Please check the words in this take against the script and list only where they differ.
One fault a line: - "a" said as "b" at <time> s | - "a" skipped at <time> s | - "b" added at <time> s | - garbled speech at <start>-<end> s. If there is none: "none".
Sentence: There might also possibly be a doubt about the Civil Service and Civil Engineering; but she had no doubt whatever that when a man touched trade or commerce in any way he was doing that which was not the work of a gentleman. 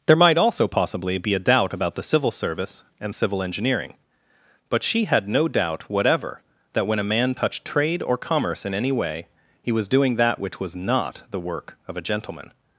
none